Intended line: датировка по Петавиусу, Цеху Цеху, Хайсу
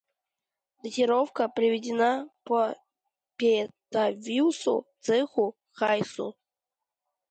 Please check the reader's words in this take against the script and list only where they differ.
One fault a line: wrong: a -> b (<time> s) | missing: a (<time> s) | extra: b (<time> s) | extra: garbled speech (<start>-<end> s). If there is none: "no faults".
extra: приведена (1.5 s)
missing: Цеху (5.6 s)